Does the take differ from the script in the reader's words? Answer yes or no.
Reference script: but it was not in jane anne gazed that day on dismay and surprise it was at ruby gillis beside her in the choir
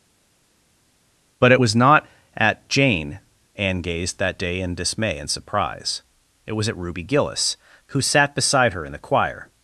yes